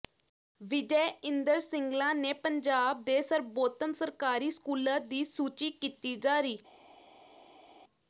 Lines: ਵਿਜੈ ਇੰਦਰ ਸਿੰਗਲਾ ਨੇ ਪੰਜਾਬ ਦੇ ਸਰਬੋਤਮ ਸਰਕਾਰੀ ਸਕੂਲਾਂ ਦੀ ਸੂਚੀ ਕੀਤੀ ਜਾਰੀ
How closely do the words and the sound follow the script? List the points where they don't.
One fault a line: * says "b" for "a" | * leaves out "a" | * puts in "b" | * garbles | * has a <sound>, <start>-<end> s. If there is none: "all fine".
all fine